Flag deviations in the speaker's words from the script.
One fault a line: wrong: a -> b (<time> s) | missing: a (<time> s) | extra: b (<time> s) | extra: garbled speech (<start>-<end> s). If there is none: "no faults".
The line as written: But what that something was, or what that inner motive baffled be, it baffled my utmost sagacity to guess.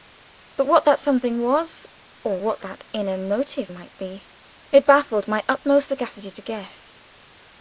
wrong: baffled -> might (3.7 s)